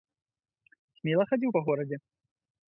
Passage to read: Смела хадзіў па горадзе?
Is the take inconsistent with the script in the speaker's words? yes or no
no